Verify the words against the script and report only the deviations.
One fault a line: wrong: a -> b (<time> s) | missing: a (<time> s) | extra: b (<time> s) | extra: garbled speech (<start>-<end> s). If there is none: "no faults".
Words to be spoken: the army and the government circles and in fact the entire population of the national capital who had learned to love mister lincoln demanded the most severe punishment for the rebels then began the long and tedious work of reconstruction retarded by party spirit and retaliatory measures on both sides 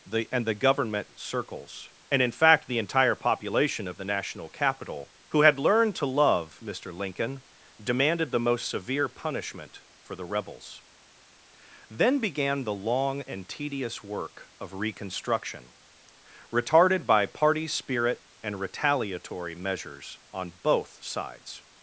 missing: army (0.3 s)